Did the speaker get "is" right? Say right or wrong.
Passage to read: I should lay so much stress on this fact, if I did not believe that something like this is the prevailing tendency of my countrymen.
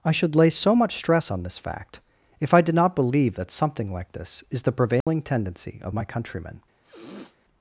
right